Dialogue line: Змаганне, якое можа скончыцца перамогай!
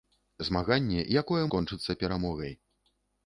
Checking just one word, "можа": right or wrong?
wrong